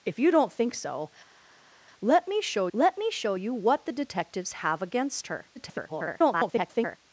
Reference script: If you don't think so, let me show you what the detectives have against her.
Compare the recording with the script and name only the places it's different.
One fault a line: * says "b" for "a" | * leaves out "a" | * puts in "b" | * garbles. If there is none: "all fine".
* puts in "let me show"
* garbles